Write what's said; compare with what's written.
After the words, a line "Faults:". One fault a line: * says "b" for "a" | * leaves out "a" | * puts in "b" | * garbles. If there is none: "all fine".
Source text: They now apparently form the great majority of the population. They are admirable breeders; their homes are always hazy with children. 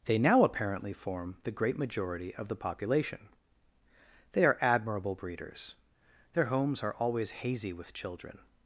They now apparently form the great majority of the population. They are admirable breeders; their homes are always hazy with children.
Faults:
all fine